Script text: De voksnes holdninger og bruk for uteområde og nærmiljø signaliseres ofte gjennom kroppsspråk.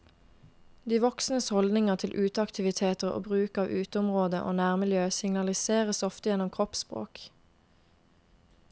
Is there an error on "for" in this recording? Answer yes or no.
yes